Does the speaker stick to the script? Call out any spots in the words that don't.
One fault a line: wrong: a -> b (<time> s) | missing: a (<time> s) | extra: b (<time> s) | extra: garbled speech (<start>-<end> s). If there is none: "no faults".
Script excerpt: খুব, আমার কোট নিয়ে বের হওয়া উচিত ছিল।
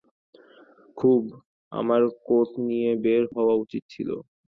no faults